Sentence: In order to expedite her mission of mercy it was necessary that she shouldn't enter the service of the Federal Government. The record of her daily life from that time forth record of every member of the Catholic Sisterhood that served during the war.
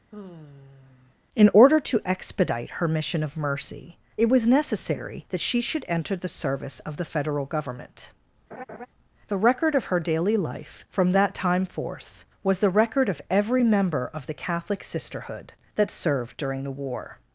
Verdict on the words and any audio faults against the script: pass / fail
fail